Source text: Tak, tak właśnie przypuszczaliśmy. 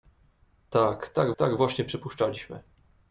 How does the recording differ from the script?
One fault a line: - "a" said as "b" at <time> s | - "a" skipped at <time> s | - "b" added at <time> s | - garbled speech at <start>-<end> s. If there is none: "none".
- "tak" added at 1.3 s